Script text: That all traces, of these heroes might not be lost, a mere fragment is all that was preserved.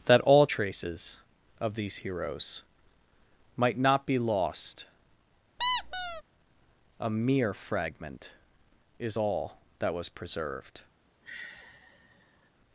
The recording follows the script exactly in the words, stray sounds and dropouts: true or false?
false